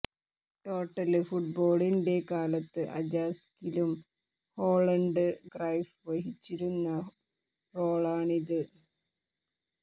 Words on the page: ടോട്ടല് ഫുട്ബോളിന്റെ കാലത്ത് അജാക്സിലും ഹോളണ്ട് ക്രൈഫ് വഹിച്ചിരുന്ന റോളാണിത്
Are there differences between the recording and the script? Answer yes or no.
no